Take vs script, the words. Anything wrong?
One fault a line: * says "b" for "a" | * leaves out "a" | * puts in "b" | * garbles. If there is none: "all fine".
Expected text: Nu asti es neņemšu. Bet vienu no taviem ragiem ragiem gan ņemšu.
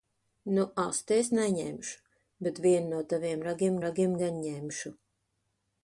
all fine